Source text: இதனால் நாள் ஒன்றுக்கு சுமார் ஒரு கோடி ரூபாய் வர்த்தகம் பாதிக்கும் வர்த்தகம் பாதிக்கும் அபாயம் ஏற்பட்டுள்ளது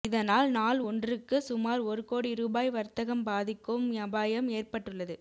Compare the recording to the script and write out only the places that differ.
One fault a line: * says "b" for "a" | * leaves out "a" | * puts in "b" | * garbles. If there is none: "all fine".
* leaves out "வர்த்தகம் பாதிக்கும்"